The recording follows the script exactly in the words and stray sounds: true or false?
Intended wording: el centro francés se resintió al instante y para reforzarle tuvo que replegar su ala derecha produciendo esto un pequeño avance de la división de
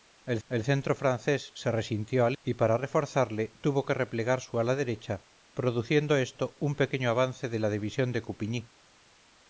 false